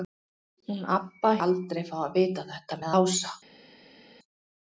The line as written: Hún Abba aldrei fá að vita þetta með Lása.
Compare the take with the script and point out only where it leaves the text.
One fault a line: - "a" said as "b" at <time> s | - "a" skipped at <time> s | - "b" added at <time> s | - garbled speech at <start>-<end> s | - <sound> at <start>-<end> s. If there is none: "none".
none